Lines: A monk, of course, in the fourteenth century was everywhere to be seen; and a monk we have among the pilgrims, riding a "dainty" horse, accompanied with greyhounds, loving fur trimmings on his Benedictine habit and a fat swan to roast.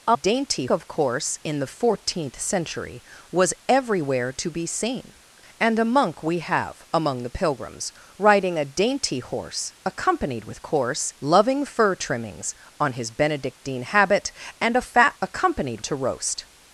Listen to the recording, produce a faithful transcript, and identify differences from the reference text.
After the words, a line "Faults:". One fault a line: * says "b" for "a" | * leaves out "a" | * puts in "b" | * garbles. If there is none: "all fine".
A dainty, of course, in the fourteenth century was everywhere to be seen; and a monk we have among the pilgrims, riding a "dainty" horse, accompanied with course, loving fur trimmings on his Benedictine habit and a fat accompanied to roast.
Faults:
* says "dainty" for "monk"
* says "course" for "greyhounds"
* says "accompanied" for "swan"